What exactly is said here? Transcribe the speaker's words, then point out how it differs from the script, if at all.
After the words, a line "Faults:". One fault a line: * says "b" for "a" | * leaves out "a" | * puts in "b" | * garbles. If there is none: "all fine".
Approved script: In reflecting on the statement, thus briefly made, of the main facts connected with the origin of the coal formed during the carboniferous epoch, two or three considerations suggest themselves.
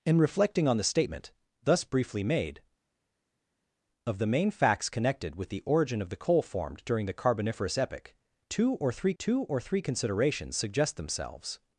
In reflecting on the statement, thus briefly made, of the main facts connected with the origin of the coal formed during the carboniferous epoch, two or three two or three considerations suggest themselves.
Faults:
* puts in "two or three"